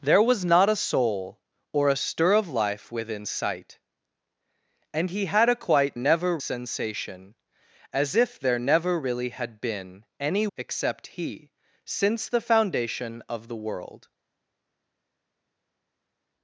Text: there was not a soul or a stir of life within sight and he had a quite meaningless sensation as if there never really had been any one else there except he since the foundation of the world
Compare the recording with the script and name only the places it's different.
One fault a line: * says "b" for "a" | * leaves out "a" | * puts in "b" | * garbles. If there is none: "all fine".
* says "never" for "meaningless"
* leaves out "one else there"